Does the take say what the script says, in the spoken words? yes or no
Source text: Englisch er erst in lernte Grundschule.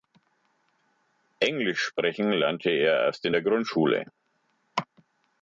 no